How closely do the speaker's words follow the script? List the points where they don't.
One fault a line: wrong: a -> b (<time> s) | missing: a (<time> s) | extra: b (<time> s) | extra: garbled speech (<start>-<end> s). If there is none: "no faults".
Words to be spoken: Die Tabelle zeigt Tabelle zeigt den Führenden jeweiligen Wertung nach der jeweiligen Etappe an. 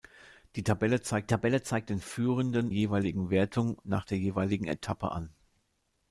no faults